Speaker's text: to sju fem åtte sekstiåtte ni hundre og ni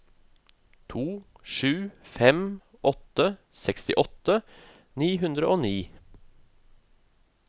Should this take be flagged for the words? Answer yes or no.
no